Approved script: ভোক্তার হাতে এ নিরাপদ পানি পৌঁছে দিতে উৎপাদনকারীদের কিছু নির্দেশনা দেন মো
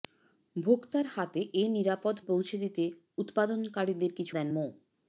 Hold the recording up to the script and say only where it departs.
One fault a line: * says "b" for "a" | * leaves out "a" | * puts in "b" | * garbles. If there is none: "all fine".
* leaves out "পানি"
* leaves out "নির্দেশনা"